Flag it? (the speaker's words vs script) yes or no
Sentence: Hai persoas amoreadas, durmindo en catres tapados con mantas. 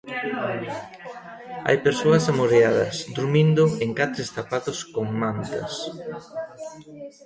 no